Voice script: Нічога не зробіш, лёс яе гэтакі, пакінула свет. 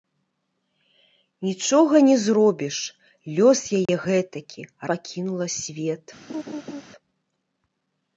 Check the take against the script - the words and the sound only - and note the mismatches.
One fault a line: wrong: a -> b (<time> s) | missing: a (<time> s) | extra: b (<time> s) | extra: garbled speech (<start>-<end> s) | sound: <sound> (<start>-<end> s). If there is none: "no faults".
sound: dropout (3.9-3.9 s)
sound: laugh (6.3-6.8 s)